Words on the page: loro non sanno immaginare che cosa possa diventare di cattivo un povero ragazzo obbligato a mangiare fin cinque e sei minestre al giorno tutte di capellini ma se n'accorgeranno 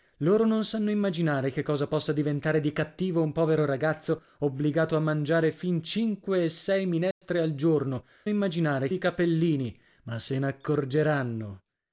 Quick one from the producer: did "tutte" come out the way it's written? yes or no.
no